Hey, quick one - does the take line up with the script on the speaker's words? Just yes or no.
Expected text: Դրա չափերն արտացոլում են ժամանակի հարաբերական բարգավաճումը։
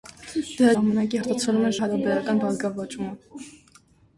no